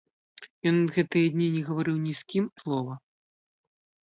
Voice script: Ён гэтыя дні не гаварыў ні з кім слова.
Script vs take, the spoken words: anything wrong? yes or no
no